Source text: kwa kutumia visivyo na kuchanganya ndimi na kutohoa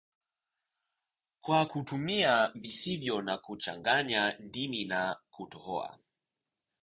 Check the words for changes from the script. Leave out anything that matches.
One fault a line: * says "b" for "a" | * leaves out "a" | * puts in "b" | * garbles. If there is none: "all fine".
all fine